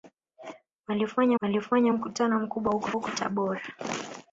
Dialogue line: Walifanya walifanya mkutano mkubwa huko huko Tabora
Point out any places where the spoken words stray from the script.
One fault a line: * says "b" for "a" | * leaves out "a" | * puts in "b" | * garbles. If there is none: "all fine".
all fine